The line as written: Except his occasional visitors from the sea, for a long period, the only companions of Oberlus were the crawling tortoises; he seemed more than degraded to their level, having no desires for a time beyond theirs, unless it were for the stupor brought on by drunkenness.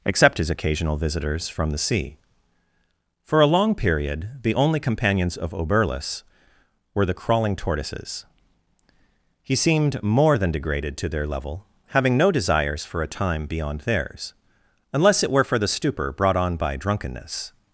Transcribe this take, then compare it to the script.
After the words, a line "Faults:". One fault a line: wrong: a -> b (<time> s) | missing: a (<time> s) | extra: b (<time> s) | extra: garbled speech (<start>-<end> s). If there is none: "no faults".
Except his occasional visitors from the sea, for a long period, the only companions of Oberlus were the crawling tortoises; he seemed more than degraded to their level, having no desires for a time beyond theirs, unless it were for the stupor brought on by drunkenness.
Faults:
no faults